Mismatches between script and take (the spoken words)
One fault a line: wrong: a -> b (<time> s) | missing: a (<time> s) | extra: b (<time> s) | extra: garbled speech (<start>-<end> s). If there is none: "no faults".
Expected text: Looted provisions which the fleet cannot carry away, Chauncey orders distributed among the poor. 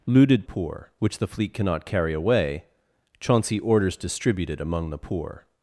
wrong: provisions -> poor (0.4 s)